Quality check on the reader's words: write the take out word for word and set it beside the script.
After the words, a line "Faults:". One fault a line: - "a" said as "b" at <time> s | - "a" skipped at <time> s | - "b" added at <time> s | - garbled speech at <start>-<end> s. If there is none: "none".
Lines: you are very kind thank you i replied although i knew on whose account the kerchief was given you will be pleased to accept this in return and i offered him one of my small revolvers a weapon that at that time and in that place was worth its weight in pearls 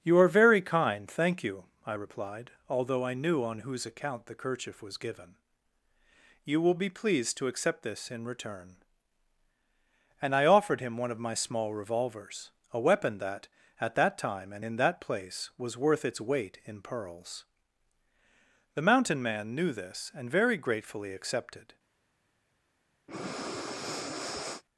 you are very kind thank you i replied although i knew on whose account the kerchief was given you will be pleased to accept this in return and i offered him one of my small revolvers a weapon that at that time and in that place was worth its weight in pearls the mountain man knew this and very gratefully accepted
Faults:
- "the mountain man knew this and very gratefully accepted" added at 18.8 s